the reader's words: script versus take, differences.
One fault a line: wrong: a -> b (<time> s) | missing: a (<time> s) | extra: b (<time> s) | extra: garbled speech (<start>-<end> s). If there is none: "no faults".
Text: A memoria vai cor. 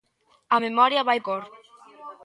no faults